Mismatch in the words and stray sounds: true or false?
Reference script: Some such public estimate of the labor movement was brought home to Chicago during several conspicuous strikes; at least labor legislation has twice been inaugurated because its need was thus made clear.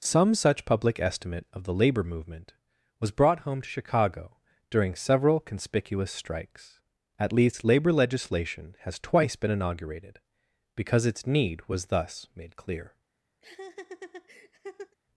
true